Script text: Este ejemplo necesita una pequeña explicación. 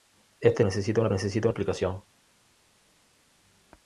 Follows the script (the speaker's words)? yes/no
no